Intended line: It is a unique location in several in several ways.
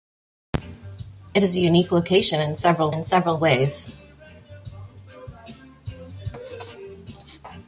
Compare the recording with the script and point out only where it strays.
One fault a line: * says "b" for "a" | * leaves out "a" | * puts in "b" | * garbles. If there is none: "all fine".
all fine